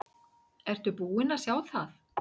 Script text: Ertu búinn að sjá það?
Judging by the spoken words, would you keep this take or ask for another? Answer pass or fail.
pass